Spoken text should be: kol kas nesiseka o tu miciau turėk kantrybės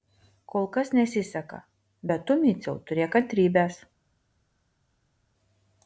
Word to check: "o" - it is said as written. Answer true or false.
false